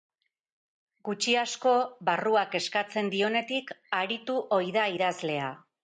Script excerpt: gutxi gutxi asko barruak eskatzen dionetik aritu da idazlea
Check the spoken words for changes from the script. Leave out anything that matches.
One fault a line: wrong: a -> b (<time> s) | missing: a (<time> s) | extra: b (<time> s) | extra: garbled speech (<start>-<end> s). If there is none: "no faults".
missing: gutxi (1.4 s)
extra: ohi (4.6 s)